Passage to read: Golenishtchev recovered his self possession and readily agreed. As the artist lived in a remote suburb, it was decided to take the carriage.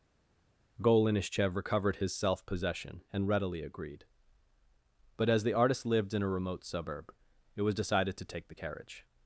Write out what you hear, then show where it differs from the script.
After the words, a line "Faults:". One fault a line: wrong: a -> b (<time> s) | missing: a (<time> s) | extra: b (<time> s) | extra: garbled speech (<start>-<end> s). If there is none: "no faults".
Golenishtchev recovered his self possession and readily agreed. But as the artist lived in a remote suburb, it was decided to take the carriage.
Faults:
extra: But (5.2 s)